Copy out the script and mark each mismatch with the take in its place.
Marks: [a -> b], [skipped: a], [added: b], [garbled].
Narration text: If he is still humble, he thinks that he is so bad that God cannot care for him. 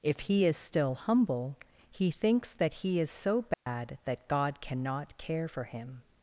If he is still humble, he thinks that he is so bad that God cannot care for him.